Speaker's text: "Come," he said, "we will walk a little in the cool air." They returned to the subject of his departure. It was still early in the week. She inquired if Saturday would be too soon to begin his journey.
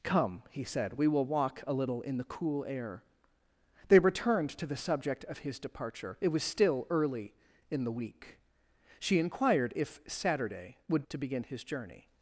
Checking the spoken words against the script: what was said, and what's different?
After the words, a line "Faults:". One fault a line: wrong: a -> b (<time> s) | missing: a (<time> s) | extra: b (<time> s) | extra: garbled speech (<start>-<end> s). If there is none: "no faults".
"Come," he said, "we will walk a little in the cool air." They returned to the subject of his departure. It was still early in the week. She inquired if Saturday would to begin his journey.
Faults:
missing: be too soon (11.1 s)